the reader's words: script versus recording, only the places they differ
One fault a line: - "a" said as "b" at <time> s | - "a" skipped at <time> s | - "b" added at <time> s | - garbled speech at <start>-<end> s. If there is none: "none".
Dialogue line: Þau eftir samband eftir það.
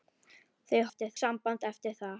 none